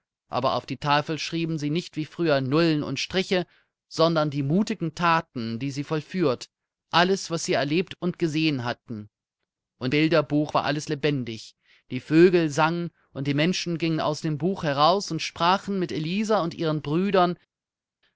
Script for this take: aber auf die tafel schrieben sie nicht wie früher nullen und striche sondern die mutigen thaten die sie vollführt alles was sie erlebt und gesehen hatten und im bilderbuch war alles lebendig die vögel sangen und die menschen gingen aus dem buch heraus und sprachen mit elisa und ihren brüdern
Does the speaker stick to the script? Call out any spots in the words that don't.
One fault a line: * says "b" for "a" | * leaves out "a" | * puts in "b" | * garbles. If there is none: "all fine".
* leaves out "im"